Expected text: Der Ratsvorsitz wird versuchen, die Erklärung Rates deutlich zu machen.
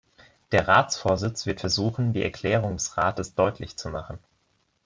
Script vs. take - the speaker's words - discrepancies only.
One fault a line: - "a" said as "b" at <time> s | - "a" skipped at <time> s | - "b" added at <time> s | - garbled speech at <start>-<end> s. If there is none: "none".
- "des" added at 2.7 s